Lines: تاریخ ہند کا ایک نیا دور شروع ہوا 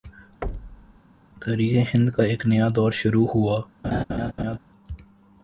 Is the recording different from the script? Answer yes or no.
no